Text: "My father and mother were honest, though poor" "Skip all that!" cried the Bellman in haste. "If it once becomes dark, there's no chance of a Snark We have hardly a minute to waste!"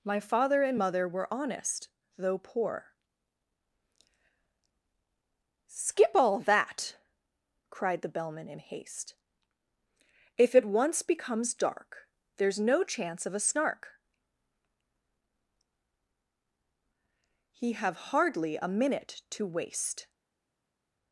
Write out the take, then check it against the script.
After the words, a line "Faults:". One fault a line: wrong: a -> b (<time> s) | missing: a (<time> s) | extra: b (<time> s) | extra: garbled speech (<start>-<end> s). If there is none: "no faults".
"My father and mother were honest, though poor" "Skip all that!" cried the Bellman in haste. "If it once becomes dark, there's no chance of a Snark He have hardly a minute to waste!"
Faults:
wrong: We -> He (17.5 s)